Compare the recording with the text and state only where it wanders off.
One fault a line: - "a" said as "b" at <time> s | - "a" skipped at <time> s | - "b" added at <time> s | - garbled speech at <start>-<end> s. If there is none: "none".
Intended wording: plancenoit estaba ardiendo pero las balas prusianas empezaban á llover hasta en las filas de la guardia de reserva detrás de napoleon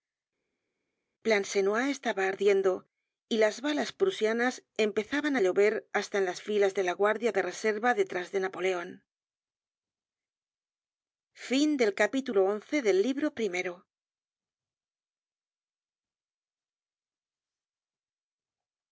- "pero" said as "y" at 3.3 s